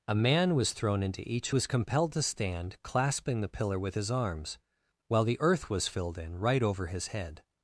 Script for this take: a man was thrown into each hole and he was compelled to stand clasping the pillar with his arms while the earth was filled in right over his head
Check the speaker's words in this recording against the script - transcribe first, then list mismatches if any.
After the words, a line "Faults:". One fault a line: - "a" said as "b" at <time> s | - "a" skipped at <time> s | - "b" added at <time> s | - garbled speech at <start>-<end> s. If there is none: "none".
a man was thrown into each was compelled to stand clasping the pillar with his arms while the earth was filled in right over his head
Faults:
- "hole and he" skipped at 1.5 s